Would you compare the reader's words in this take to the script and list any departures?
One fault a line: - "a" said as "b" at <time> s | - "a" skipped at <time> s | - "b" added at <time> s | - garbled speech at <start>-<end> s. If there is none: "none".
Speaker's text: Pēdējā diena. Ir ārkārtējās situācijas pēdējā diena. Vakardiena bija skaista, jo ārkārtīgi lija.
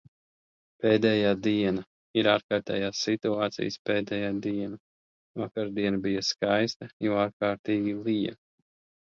none